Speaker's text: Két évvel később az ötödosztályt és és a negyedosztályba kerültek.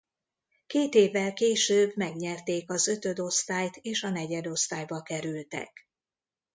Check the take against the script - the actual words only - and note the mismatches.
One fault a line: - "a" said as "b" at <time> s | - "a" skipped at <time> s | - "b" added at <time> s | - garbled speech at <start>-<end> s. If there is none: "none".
- "megnyerték" added at 2.0 s
- "és" skipped at 4.0 s